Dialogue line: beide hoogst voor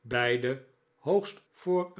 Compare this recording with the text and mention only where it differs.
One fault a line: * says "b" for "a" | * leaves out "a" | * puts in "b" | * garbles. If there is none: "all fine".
all fine